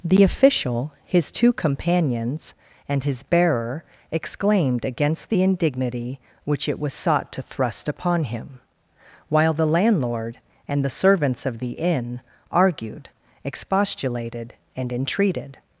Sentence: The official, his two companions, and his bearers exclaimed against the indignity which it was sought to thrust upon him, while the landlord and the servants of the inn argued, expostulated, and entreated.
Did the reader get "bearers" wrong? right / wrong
wrong